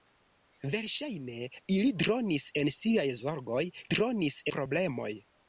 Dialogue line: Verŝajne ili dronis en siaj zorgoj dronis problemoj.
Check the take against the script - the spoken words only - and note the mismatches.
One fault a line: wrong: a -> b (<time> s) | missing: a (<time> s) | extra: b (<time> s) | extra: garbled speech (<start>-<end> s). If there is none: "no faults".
no faults